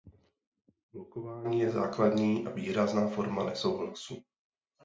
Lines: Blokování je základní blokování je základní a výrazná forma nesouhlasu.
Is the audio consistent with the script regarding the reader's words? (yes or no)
no